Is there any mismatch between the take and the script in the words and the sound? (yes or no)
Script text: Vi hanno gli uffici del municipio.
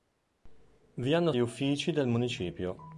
no